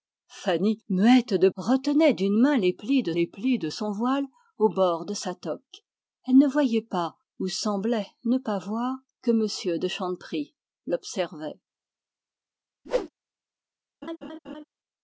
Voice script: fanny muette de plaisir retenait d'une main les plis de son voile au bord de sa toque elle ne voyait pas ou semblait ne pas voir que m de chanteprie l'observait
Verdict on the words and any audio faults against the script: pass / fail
fail